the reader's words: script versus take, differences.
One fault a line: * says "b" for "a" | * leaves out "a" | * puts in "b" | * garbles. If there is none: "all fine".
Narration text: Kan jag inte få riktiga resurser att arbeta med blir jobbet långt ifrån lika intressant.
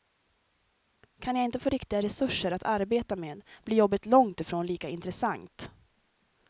all fine